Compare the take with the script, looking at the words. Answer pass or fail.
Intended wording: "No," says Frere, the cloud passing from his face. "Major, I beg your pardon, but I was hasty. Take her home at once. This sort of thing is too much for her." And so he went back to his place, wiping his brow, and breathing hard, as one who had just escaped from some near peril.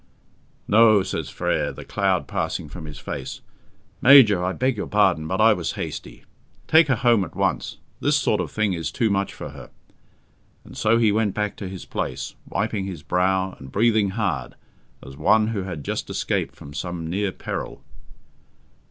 pass